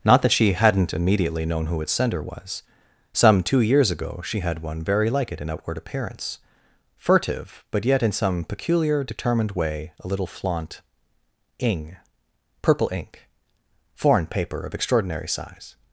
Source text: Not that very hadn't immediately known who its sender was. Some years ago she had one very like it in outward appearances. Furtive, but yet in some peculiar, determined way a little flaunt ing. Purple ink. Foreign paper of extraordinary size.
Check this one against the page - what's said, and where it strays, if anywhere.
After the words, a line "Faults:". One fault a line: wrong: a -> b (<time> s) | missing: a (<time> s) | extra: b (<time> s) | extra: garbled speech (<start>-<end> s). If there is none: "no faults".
Not that she hadn't immediately known who its sender was. Some two years ago she had one very like it in outward appearance. Furtive, but yet in some peculiar, determined way a little flaunt ing. Purple ink. Foreign paper of extraordinary size.
Faults:
wrong: very -> she (0.3 s)
extra: two (3.4 s)
wrong: appearances -> appearance (5.8 s)